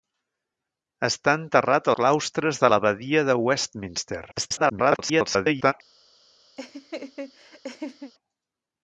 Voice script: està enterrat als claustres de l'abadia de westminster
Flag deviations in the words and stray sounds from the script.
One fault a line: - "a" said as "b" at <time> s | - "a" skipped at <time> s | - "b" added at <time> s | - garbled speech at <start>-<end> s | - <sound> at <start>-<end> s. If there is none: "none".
- "als" skipped at 1.9 s
- garbled speech at 4.3-5.7 s
- laugh at 6.6-8.1 s